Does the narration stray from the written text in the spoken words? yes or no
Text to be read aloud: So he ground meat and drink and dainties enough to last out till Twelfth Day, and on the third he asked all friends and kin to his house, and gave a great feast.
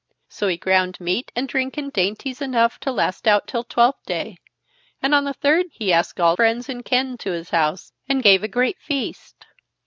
no